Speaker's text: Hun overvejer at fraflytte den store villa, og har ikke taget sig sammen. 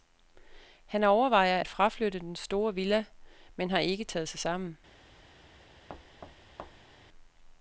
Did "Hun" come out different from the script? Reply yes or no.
yes